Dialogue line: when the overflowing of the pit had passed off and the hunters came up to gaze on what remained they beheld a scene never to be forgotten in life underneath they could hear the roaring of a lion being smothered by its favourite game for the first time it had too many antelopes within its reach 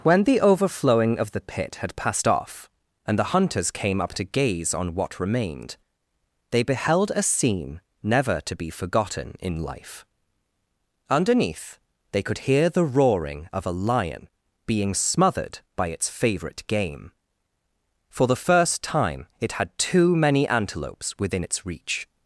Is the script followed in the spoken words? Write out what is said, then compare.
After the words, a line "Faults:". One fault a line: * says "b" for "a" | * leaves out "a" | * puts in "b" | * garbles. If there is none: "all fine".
when the overflowing of the pit had passed off and the hunters came up to gaze on what remained they beheld a scene never to be forgotten in life underneath they could hear the roaring of a lion being smothered by its favourite game for the first time it had too many antelopes within its reach
Faults:
all fine